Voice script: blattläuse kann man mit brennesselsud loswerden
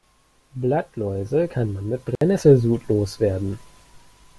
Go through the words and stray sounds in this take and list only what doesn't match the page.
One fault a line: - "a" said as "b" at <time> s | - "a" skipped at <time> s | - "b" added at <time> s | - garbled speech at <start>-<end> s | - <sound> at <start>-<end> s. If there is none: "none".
- dropout at 2.2-2.2 s